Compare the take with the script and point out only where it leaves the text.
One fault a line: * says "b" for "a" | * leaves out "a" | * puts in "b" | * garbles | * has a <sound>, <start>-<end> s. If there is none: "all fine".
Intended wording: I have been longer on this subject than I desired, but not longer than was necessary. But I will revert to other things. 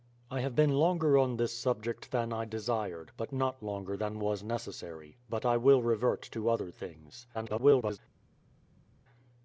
* garbles